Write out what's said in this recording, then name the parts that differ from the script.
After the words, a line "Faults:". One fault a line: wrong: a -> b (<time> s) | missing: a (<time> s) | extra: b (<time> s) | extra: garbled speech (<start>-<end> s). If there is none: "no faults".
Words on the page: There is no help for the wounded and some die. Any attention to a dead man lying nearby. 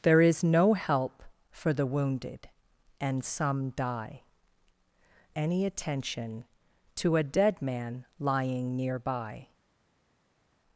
There is no help for the wounded and some die. Any attention to a dead man lying nearby.
Faults:
no faults